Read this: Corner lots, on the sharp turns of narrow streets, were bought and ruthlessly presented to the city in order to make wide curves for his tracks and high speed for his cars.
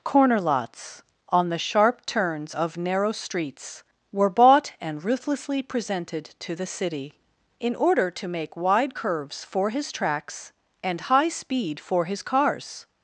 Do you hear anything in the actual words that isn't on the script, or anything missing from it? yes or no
no